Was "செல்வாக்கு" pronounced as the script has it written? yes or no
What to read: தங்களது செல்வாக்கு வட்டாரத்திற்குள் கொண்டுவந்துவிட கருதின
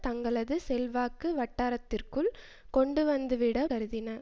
yes